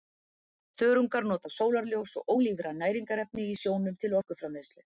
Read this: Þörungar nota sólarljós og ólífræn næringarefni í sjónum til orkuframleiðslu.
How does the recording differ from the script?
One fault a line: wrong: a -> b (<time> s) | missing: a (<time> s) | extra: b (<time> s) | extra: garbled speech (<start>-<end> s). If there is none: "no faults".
no faults